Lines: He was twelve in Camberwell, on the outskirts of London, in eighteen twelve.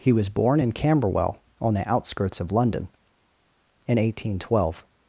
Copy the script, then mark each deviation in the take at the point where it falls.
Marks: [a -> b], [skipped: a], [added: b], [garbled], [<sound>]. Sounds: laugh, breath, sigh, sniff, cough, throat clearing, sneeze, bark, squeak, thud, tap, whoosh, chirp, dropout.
He was [twelve -> born] in Camberwell, on the outskirts of London, in eighteen twelve.